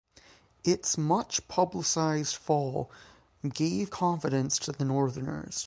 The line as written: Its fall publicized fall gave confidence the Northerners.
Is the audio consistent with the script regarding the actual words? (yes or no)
no